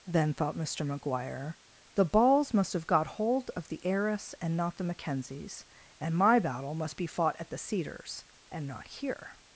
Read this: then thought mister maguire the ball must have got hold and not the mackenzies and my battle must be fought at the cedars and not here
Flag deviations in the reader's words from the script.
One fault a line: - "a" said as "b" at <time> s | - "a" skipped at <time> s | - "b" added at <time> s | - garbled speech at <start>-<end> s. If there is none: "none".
- "ball" said as "balls" at 2.0 s
- "of the heiress" added at 3.5 s